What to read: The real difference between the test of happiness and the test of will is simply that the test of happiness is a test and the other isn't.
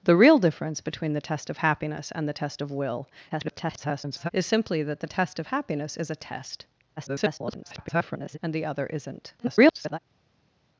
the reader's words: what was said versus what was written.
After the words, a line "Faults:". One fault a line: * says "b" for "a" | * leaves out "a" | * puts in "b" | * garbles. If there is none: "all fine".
The real difference between the test of happiness and the test of will [garbled] is simply that the test of happiness is a test [garbled] and the other isn't. [garbled]
Faults:
* garbles
* garbles
* garbles